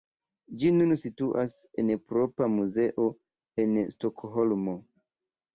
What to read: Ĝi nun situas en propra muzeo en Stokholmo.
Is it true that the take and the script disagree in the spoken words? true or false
false